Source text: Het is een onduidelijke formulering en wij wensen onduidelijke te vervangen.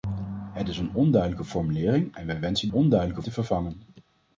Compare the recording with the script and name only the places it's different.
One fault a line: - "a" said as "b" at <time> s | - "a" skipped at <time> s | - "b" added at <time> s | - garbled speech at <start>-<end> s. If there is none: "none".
none